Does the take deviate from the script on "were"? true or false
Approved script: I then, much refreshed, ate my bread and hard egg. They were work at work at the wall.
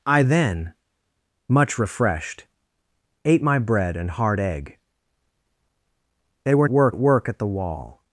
false